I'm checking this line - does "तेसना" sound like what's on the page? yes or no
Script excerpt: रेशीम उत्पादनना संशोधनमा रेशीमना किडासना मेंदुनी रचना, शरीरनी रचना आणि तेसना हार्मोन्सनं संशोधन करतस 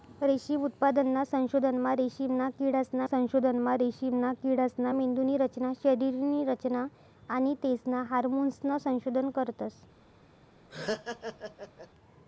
yes